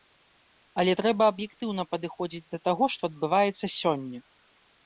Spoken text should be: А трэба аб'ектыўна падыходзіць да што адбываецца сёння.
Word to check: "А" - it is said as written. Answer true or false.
false